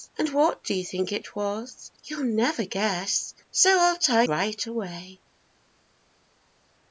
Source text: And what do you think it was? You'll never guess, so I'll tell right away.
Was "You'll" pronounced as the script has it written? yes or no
yes